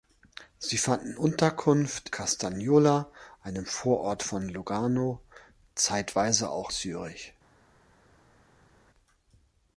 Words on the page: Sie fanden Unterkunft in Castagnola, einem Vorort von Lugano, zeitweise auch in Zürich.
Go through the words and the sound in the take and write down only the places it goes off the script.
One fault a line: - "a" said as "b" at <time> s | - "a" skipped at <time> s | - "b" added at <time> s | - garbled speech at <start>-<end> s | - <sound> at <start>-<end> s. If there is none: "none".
- "in" skipped at 2.1 s
- "in" skipped at 6.7 s